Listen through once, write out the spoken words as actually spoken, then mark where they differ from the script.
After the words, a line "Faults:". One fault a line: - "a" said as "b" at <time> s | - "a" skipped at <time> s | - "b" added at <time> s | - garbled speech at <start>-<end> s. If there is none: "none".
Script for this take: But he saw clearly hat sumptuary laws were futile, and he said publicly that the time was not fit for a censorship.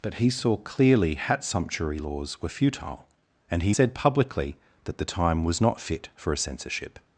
But he saw clearly hat sumptuary laws were futile, and he said publicly that the time was not fit for a censorship.
Faults:
none